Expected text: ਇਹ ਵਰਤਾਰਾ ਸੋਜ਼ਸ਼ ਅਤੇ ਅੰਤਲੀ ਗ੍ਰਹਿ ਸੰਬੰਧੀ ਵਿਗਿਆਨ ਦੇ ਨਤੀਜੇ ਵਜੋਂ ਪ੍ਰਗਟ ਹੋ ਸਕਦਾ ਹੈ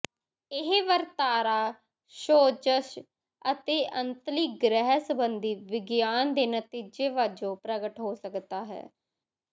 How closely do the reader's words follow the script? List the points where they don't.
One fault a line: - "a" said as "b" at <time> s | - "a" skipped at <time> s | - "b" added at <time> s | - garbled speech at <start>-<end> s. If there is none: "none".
none